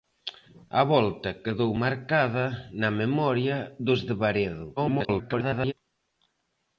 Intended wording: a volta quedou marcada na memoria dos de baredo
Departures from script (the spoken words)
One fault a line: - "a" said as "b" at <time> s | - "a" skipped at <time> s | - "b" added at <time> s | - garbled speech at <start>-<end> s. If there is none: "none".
- garbled speech at 4.8-5.7 s